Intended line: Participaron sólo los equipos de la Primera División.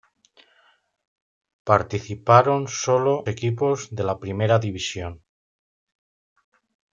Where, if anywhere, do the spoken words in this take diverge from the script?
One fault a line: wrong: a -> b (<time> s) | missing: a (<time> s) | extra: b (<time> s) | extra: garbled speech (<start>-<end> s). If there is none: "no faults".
missing: los (3.3 s)